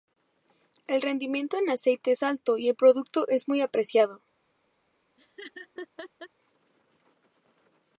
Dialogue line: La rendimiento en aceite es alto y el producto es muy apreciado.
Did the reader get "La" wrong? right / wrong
wrong